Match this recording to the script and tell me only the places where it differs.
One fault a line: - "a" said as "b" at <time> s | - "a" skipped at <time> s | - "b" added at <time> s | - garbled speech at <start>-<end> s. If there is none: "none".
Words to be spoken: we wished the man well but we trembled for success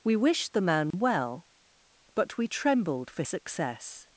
none